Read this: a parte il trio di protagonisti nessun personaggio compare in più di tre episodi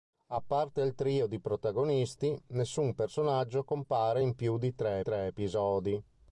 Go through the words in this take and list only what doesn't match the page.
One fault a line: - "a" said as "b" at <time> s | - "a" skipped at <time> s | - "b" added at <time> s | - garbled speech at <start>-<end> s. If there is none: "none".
- "tre" added at 5.0 s